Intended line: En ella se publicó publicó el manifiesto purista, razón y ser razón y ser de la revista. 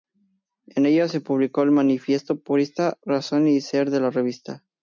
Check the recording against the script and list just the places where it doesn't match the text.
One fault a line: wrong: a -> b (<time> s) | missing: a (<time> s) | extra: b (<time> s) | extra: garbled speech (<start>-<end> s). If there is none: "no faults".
missing: publicó (1.6 s)
missing: razón y ser (3.9 s)